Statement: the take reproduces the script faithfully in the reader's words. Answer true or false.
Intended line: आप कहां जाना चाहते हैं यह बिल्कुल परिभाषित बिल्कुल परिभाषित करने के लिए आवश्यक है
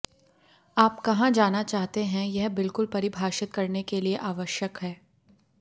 false